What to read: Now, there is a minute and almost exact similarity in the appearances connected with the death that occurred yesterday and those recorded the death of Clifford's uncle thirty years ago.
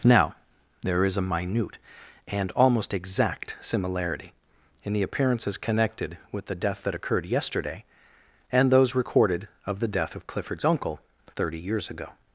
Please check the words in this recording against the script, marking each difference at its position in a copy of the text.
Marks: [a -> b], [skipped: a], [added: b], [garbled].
Now, there is a minute and almost exact similarity in the appearances connected with the death that occurred yesterday and those recorded [added: of] the death of Clifford's uncle thirty years ago.